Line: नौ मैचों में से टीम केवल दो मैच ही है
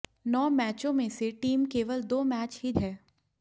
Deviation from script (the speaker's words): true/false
false